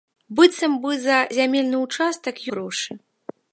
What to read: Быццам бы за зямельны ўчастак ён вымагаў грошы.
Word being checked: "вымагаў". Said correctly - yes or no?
no